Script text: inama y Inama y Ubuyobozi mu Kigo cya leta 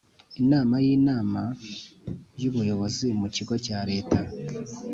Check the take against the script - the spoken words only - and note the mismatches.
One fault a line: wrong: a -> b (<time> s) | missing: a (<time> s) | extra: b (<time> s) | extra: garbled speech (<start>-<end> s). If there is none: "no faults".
no faults